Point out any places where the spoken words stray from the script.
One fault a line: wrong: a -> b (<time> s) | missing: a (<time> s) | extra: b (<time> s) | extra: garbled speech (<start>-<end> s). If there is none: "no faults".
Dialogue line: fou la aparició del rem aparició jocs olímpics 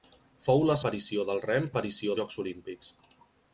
no faults